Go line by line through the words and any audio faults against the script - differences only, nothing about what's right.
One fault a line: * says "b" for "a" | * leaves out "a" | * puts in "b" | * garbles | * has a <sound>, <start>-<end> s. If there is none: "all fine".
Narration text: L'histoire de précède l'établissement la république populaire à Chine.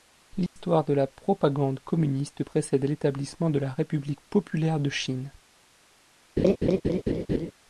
* has a dropout, 0.5-0.6 s
* puts in "la propagande communiste"
* puts in "de"
* says "de" for "à"
* has a laugh, 6.4-7.5 s